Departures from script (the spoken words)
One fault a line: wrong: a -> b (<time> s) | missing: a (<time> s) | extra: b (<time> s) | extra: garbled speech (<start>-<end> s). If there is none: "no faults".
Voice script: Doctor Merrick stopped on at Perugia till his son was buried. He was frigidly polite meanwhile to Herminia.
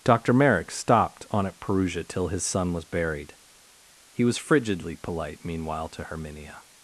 no faults